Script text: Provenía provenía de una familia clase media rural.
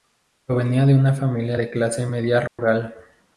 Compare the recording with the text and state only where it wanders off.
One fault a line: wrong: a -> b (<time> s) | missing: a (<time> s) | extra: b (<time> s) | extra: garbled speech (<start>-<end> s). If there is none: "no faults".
missing: provenía (0.9 s)
extra: de (1.6 s)